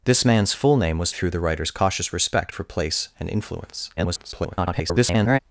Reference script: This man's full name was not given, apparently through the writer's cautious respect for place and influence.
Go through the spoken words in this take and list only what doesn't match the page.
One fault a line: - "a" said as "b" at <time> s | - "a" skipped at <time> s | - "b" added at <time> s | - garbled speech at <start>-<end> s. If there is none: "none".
- "not given apparently" skipped at 1.1 s
- garbled speech at 4.0-5.4 s